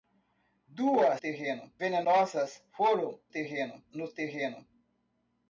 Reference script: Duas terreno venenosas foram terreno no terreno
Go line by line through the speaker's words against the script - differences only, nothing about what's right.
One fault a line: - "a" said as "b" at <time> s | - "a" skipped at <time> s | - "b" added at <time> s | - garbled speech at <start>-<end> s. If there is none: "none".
none